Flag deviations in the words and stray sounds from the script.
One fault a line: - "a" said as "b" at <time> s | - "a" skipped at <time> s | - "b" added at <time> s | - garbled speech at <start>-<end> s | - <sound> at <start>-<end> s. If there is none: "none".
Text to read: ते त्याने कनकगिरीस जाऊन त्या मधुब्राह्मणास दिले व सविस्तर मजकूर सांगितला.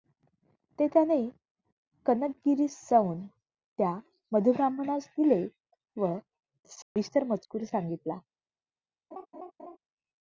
- dropout at 6.8-7.0 s
- laugh at 9.1-9.8 s